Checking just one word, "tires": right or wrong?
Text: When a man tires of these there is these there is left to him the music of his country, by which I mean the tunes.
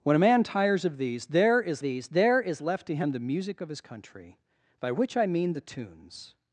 right